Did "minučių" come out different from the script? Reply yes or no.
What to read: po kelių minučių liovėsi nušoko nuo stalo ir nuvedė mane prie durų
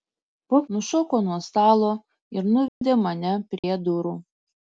yes